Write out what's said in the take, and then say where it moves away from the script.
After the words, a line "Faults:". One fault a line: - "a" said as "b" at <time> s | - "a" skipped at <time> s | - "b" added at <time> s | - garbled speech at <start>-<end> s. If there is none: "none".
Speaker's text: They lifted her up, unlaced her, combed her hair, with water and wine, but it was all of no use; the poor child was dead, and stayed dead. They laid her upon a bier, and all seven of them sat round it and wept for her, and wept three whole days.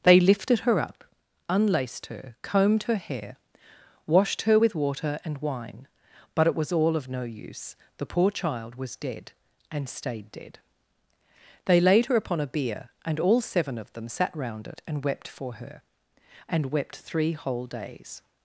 They lifted her up, unlaced her, combed her hair, washed her with water and wine, but it was all of no use; the poor child was dead, and stayed dead. They laid her upon a bier, and all seven of them sat round it and wept for her, and wept three whole days.
Faults:
- "washed her" added at 4.1 s